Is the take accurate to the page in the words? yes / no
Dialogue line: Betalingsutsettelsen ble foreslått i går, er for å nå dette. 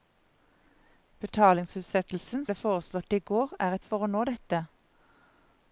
yes